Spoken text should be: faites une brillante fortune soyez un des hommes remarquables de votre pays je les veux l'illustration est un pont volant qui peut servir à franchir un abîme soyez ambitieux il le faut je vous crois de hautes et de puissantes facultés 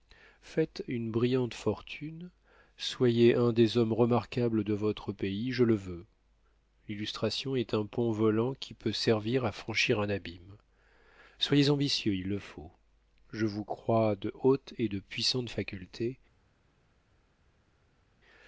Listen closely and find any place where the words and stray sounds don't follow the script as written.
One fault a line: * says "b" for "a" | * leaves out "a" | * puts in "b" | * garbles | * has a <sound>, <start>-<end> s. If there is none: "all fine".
* says "le" for "les"